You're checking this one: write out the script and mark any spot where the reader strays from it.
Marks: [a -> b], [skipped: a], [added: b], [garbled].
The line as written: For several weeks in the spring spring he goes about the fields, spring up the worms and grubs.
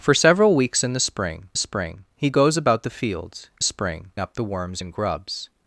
For several weeks in the spring spring he goes about the fields, spring up the worms and grubs.